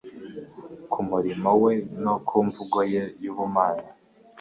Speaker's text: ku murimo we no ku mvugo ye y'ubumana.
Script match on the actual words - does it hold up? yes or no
yes